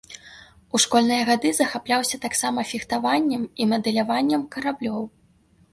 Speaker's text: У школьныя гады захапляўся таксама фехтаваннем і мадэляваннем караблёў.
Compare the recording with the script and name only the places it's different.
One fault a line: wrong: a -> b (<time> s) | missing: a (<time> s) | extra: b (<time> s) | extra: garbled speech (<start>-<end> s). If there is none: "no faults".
no faults